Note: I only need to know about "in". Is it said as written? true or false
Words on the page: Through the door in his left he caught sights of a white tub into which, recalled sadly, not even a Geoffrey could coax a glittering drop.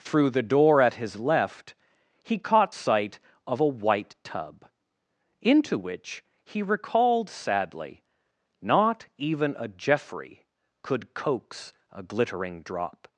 false